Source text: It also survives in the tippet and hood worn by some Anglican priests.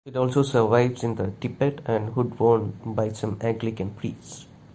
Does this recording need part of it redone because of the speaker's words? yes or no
no